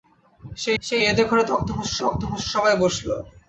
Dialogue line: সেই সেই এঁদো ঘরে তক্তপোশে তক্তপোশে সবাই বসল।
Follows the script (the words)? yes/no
yes